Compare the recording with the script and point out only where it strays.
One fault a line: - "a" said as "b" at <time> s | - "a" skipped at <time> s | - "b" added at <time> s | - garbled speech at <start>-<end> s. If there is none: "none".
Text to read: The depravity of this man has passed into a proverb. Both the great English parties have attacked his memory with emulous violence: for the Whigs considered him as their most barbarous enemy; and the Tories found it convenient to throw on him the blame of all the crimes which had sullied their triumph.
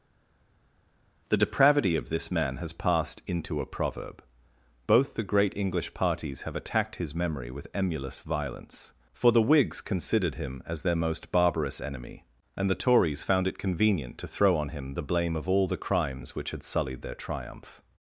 none